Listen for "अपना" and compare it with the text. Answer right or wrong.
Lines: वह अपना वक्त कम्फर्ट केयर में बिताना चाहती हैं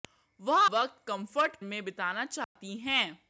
wrong